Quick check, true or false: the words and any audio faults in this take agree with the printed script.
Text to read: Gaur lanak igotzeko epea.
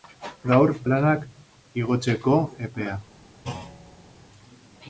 false